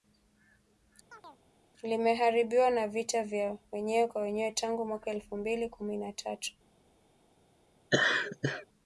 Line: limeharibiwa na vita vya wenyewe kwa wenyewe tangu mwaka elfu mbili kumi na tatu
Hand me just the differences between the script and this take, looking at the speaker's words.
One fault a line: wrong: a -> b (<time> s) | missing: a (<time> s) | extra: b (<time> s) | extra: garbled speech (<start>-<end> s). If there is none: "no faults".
no faults